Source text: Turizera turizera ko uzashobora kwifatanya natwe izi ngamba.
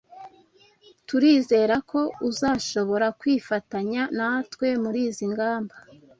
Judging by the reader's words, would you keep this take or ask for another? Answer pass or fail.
fail